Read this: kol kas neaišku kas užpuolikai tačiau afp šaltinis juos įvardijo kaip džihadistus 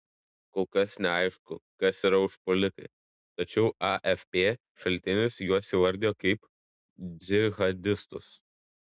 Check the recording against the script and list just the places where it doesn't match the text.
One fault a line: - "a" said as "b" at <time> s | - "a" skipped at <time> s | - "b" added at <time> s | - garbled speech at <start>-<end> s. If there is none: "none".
- "yra" added at 2.1 s